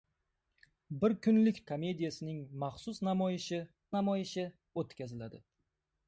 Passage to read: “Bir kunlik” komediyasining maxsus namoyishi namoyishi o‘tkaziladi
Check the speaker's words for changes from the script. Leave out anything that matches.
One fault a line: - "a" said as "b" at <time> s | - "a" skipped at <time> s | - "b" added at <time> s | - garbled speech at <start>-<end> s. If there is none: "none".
none